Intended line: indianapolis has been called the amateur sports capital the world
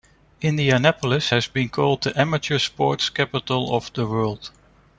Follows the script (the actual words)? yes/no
no